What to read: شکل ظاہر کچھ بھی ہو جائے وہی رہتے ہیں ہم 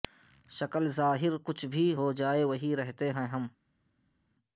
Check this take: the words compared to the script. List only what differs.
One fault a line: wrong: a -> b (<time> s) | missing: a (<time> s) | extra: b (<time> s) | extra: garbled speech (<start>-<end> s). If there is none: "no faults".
no faults